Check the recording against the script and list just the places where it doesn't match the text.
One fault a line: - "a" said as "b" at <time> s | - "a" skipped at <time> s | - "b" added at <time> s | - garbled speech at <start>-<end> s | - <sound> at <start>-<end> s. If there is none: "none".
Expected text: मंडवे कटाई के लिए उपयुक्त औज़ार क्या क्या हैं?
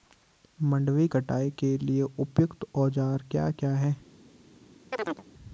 - chirp at 4.9-5.2 s